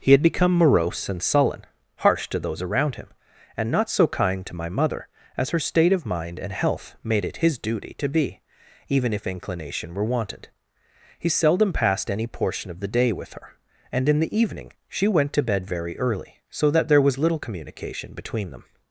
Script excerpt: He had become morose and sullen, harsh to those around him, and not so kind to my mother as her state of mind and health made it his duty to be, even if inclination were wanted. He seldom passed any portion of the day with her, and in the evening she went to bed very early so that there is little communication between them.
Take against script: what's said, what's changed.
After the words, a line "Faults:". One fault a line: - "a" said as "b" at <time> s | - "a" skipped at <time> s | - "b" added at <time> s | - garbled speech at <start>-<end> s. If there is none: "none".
He had become morose and sullen, harsh to those around him, and not so kind to my mother as her state of mind and health made it his duty to be, even if inclination were wanted. He seldom passed any portion of the day with her, and in the evening she went to bed very early so that there was little communication between them.
Faults:
- "is" said as "was" at 17.0 s